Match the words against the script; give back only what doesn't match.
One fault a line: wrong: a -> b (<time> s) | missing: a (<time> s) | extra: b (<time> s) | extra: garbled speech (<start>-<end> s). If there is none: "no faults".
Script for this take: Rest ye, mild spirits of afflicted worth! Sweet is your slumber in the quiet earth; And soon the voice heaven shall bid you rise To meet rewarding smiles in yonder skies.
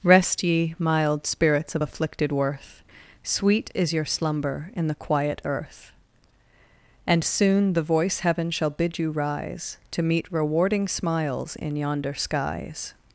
no faults